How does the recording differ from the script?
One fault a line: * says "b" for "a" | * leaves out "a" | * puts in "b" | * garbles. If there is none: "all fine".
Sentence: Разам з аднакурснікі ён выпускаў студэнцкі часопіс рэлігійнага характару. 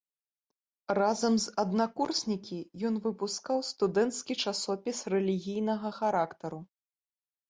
all fine